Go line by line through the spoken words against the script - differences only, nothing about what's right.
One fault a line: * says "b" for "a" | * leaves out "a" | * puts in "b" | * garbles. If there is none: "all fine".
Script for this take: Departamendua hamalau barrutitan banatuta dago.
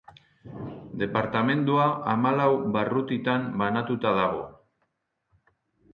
all fine